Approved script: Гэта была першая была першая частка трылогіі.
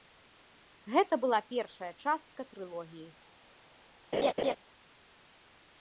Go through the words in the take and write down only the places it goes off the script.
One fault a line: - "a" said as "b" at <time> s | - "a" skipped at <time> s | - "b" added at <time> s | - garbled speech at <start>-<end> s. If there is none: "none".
- "была першая" skipped at 1.9 s